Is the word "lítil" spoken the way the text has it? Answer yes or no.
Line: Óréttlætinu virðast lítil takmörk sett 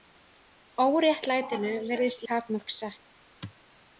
no